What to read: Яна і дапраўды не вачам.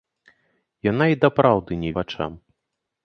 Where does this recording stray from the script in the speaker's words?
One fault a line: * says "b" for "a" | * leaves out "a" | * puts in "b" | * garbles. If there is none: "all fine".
all fine